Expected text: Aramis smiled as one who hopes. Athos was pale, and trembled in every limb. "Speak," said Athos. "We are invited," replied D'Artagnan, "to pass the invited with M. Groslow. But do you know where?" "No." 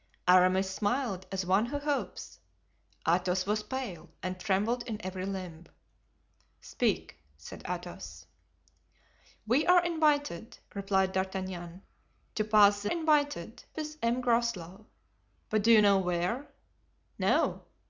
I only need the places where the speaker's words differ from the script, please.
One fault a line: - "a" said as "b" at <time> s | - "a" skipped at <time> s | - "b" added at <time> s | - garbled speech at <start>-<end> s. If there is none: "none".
none